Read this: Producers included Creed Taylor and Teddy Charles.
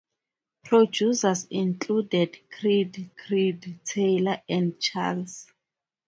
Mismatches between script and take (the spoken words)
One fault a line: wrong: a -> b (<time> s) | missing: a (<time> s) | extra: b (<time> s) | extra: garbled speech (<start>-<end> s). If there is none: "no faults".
extra: Creed (3.2 s)
missing: Teddy (4.8 s)